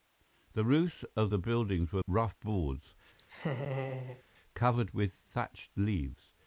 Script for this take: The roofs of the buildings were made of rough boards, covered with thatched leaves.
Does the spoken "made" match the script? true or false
false